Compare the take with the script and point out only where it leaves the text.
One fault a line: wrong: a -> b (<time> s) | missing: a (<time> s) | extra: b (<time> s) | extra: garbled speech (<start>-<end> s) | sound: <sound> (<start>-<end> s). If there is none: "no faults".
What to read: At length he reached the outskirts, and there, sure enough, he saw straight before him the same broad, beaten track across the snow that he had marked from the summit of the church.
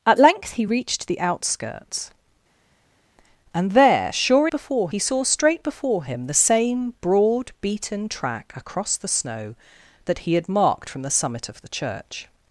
wrong: enough -> before (4.5 s)